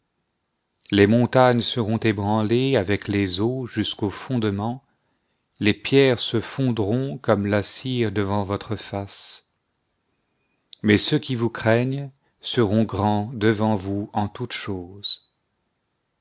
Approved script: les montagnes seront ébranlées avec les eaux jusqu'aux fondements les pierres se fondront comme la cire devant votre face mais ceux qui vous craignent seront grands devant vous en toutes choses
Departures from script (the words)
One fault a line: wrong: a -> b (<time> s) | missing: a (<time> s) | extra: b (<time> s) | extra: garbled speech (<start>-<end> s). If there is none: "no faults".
no faults